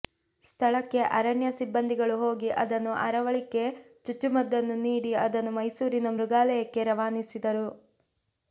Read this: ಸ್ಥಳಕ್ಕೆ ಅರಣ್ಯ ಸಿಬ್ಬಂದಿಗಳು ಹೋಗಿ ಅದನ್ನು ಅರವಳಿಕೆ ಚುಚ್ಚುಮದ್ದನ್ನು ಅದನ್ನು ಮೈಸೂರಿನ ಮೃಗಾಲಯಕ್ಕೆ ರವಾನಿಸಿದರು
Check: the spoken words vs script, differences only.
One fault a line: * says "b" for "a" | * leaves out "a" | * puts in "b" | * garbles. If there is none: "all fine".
* puts in "ನೀಡಿ"